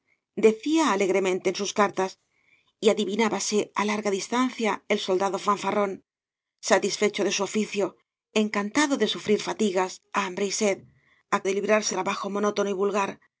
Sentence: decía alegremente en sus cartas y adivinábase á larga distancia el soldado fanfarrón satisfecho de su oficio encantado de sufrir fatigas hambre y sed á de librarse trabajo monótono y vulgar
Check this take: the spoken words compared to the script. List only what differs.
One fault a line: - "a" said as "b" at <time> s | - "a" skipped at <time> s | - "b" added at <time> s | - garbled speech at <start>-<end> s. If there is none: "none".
none